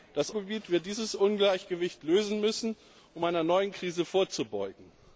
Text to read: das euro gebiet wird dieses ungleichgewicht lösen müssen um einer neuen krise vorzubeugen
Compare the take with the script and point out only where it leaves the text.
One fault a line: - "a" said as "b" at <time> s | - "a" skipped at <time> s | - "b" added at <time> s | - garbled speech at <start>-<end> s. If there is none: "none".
- "euro" skipped at 0.3 s